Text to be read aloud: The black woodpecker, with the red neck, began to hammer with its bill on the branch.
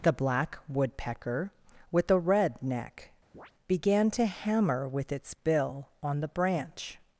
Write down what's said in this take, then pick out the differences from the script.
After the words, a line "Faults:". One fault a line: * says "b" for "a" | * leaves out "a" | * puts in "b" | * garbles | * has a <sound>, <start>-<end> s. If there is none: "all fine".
The black woodpecker, with the red neck, began to hammer with its bill on the branch.
Faults:
* has a chirp, 3.3-3.5 s